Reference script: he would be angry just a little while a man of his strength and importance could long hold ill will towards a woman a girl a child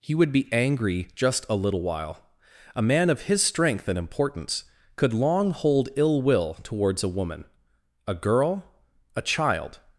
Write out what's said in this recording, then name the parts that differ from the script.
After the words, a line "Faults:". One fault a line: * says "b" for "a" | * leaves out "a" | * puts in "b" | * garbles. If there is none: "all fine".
he would be angry just a little while a man of his strength and importance could long hold ill will towards a woman a girl a child
Faults:
all fine